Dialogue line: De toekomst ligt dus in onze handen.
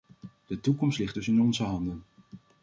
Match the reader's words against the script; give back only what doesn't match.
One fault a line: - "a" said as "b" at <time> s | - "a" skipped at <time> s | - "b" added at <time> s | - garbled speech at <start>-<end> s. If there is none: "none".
none